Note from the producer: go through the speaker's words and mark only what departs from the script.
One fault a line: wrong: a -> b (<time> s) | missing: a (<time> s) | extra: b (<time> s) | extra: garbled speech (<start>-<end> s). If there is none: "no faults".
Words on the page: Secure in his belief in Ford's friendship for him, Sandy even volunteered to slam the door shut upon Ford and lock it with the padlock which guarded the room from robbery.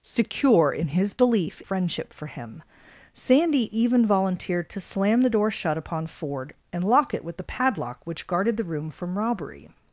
missing: in Ford's (1.6 s)